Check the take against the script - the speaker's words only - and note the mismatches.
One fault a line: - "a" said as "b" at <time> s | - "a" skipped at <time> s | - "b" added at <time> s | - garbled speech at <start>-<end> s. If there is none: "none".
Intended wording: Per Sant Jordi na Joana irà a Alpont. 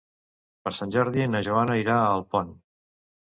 none